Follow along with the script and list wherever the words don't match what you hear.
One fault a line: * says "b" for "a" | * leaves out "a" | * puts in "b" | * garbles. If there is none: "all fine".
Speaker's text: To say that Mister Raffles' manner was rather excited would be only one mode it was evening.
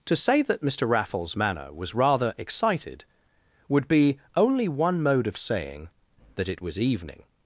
* puts in "of saying that"